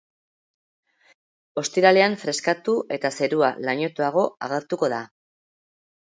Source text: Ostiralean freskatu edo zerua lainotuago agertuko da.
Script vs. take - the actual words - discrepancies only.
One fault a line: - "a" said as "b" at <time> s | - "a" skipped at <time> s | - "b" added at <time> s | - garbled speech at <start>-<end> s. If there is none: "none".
- "edo" said as "eta" at 3.0 s